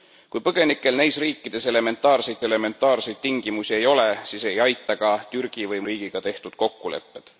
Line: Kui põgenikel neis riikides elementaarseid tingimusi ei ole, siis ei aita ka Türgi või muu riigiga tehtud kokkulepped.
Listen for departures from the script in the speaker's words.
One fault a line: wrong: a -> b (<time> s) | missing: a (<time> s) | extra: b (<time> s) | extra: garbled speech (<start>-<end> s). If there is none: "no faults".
extra: elementaarseid (2.5 s)
missing: muu (5.8 s)